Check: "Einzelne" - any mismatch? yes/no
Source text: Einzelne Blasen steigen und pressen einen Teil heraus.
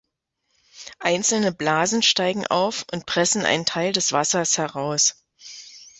no